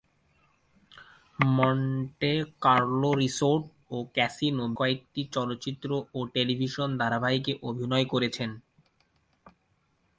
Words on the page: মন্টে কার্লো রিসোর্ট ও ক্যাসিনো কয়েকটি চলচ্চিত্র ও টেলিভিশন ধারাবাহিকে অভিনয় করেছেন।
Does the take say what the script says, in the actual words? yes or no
yes